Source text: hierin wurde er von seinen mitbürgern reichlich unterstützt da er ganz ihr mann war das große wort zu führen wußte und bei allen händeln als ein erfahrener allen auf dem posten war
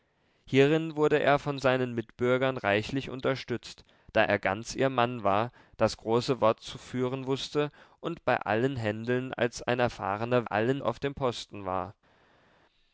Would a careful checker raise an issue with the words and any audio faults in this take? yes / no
no